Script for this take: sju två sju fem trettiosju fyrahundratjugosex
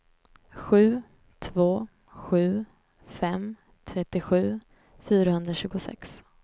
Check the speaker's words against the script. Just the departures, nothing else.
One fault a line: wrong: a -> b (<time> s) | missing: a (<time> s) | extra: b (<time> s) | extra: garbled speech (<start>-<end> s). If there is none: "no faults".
no faults